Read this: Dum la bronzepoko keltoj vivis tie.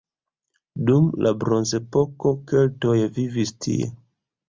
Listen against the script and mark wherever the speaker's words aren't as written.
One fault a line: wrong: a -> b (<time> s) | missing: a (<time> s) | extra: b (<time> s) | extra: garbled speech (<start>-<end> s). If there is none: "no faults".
no faults